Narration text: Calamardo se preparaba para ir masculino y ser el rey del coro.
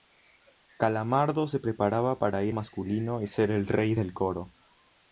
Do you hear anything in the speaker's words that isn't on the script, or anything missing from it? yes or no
no